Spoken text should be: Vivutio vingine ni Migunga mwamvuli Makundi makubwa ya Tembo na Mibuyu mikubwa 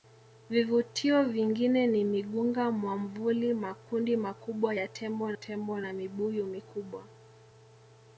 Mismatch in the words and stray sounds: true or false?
true